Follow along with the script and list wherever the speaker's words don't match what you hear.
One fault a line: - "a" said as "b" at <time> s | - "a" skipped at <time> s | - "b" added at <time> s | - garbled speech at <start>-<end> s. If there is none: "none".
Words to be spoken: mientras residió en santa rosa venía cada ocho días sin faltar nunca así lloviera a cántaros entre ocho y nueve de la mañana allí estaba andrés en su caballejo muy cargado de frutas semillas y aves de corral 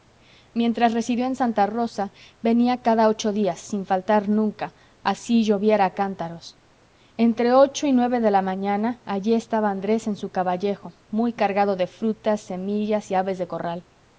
none